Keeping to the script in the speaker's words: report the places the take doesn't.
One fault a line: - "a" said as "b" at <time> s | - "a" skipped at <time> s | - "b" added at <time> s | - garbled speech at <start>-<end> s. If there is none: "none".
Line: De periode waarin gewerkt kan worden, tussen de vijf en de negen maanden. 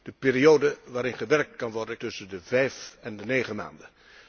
none